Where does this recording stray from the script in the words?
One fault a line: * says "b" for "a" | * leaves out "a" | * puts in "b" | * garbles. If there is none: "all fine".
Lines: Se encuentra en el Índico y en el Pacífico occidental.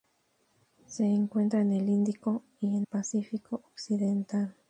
* leaves out "el"